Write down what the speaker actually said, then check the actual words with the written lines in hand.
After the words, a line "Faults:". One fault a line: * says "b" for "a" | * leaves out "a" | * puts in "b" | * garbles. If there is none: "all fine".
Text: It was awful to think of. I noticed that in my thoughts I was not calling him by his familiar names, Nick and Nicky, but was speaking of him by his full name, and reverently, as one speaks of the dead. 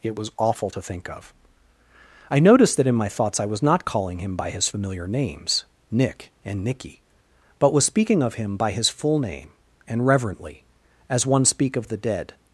It was awful to think of. I noticed that in my thoughts I was not calling him by his familiar names, Nick and Nicky, but was speaking of him by his full name, and reverently, as one speak of the dead.
Faults:
* says "speak" for "speaks"